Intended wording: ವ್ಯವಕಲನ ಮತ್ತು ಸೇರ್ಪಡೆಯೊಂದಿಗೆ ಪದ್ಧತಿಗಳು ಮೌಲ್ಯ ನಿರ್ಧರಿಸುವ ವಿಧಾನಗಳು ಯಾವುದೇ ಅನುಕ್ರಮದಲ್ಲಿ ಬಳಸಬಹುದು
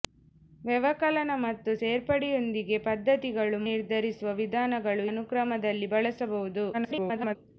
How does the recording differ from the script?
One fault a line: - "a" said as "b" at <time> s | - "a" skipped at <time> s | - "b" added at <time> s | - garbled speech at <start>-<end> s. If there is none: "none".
- "ಮೌಲ್ಯ" skipped at 3.6 s
- "ಯಾವುದೇ" skipped at 5.1 s
- garbled speech at 6.7-7.4 s